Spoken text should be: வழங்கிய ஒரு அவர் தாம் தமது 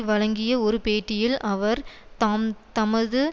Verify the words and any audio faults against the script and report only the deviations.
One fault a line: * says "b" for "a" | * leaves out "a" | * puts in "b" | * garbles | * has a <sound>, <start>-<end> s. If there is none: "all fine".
* puts in "பேட்டியில்"